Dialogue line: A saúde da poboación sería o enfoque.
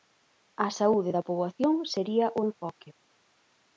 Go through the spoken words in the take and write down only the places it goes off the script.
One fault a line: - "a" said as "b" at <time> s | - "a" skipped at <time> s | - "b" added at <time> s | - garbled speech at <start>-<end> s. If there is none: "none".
none